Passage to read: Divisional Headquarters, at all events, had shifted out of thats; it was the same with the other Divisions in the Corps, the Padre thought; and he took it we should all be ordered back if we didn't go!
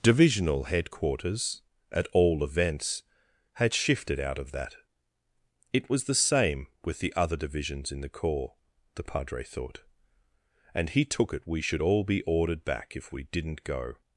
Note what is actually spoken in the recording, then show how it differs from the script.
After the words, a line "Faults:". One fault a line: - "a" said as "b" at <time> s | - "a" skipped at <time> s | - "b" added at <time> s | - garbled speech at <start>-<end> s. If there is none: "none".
Divisional Headquarters, at all events, had shifted out of that; it was the same with the other Divisions in the Corps, the Padre thought; and he took it we should all be ordered back if we didn't go!
Faults:
- "thats" said as "that" at 4.5 s